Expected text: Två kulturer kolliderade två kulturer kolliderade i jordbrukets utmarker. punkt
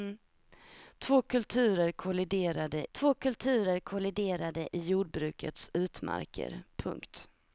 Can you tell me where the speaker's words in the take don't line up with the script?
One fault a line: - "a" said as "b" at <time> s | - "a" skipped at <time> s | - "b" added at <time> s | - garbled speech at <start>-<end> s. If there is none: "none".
none